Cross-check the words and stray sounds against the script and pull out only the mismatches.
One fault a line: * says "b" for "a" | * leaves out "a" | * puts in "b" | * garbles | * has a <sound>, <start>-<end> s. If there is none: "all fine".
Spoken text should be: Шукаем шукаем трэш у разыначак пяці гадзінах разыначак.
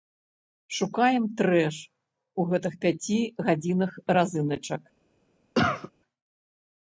* leaves out "шукаем"
* says "гэтых" for "разыначак"
* has a cough, 5.6-5.9 s